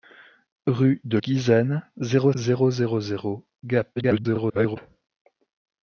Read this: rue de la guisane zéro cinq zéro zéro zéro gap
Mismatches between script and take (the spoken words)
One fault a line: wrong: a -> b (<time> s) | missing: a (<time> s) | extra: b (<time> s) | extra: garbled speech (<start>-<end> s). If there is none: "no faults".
missing: la (1.2 s)
missing: cinq (2.3 s)
extra: garbled speech (4.0-4.8 s)